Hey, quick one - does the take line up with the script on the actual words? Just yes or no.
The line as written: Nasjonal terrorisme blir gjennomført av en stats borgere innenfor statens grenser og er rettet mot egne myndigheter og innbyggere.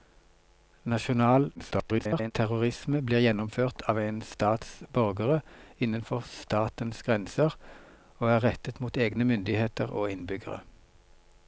no